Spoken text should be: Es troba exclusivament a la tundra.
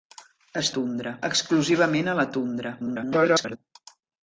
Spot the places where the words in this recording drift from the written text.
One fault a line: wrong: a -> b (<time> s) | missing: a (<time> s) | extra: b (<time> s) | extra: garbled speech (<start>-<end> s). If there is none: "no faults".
wrong: troba -> tundra (0.8 s)
extra: garbled speech (2.8-3.6 s)